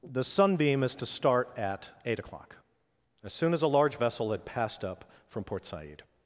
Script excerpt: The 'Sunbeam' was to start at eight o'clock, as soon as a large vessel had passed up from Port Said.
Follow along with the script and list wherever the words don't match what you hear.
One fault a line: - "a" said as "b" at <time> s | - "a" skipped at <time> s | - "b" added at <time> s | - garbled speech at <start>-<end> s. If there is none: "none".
- "was" said as "is" at 0.8 s